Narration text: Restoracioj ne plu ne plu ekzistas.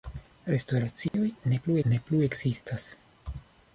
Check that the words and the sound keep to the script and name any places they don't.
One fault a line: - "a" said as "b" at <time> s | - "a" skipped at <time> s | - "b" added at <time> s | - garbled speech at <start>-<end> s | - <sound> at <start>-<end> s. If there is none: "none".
- dropout at 1.1-1.1 s